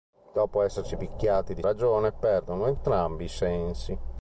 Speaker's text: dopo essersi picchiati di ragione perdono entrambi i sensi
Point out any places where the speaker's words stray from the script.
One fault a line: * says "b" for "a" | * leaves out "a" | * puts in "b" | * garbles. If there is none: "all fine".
all fine